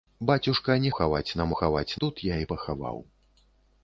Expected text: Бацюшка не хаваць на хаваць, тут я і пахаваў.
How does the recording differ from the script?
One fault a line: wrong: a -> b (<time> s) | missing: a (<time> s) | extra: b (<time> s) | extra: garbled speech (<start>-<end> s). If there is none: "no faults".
no faults